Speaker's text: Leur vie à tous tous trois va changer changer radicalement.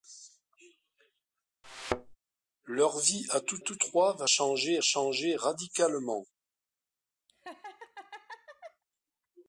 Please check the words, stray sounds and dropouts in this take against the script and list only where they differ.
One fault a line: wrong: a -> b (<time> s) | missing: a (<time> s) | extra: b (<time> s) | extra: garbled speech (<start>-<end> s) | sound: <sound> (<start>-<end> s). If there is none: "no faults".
sound: thud (1.6-2.2 s)
sound: laugh (7.3-8.8 s)